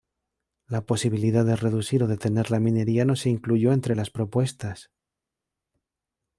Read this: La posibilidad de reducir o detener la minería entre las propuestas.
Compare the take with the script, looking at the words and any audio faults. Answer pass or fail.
fail